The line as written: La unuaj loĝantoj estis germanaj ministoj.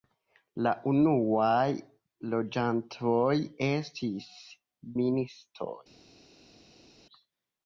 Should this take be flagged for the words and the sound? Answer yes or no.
yes